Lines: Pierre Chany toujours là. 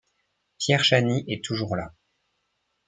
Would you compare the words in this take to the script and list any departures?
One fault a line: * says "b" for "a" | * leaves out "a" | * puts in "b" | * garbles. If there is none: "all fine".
* puts in "est"